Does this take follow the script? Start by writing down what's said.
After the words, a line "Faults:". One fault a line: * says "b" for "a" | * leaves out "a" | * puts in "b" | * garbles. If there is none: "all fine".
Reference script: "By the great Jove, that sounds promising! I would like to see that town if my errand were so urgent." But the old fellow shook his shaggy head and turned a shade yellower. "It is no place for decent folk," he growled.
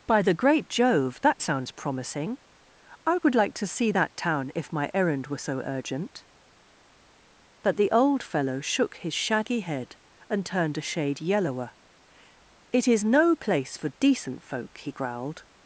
"By the great Jove, that sounds promising! I would like to see that town if my errand were so urgent." But the old fellow shook his shaggy head and turned a shade yellower. "It is no place for decent folk," he growled.
Faults:
all fine